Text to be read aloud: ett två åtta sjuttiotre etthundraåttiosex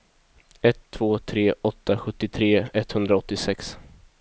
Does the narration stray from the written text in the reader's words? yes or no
yes